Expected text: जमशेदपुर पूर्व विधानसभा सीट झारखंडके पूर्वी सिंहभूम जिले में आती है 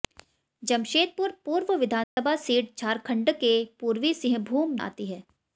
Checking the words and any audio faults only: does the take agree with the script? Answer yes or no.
no